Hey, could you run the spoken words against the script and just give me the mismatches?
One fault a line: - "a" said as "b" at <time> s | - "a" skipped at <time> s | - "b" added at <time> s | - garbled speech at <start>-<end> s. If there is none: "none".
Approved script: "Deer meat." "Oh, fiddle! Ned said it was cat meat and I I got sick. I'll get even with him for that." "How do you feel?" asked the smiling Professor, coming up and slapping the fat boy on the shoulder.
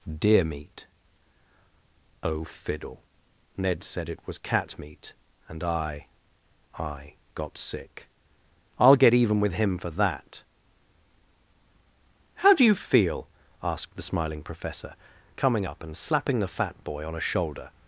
- "the" said as "a" at 17.1 s